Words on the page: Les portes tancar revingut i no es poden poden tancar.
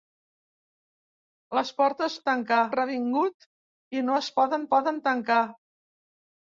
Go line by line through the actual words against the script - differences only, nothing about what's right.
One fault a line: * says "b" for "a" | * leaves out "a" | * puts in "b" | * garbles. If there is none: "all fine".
all fine